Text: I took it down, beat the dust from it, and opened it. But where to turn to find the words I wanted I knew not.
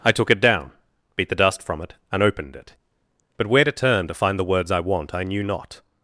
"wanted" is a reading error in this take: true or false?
true